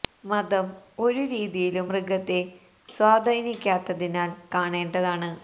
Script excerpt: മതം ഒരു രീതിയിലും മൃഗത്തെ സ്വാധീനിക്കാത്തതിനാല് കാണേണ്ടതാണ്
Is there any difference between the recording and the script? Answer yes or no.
no